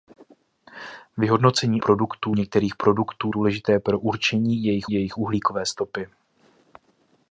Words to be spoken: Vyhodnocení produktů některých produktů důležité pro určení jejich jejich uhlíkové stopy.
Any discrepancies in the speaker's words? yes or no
no